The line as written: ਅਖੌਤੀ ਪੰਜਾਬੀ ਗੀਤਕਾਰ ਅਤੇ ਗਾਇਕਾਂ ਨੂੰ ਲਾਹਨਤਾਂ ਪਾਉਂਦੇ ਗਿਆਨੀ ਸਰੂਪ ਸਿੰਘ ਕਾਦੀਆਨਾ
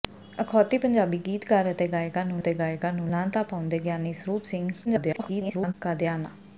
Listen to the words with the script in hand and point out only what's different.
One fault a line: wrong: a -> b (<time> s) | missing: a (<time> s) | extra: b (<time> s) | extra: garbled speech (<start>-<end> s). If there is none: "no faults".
extra: ਅਤੇ ਗਾਇਕਾਂ ਨੂੰ (2.4 s)
extra: garbled speech (4.8-5.7 s)